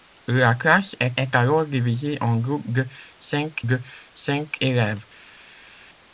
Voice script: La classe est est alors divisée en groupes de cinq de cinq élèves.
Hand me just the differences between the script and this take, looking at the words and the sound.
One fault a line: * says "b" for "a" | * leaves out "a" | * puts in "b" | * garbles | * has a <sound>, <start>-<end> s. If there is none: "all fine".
all fine